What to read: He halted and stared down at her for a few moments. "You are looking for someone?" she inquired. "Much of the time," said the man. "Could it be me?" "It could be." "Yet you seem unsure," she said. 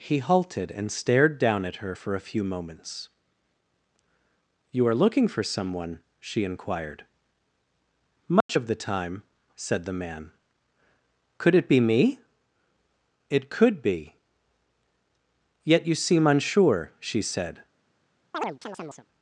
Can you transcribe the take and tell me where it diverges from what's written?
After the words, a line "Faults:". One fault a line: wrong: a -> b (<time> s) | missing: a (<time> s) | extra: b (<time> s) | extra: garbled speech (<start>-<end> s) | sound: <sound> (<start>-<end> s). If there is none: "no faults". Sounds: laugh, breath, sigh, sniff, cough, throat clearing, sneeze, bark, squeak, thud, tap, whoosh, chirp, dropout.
He halted and stared down at her for a few moments. "You are looking for someone?" she inquired. "Much of the time," said the man. "Could it be me?" "It could be." "Yet you seem unsure," she said.
Faults:
sound: dropout (8.4-8.5 s)
sound: chirp (18.3-19.1 s)